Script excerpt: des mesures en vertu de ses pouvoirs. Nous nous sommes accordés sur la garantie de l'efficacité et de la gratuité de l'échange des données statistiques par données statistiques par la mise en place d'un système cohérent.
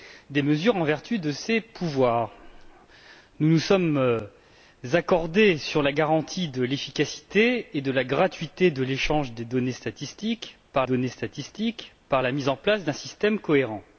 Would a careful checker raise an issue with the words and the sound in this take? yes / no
no